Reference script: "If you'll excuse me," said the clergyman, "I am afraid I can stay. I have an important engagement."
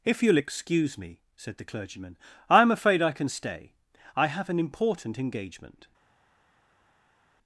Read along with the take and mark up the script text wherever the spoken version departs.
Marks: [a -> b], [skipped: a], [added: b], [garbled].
"If you'll excuse me," said the clergyman, "I am afraid I can stay. I have an important engagement."